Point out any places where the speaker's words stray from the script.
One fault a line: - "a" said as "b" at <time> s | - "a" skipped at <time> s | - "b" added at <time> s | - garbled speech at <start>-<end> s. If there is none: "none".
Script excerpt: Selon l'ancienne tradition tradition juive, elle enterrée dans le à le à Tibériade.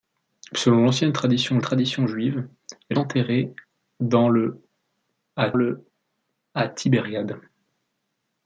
none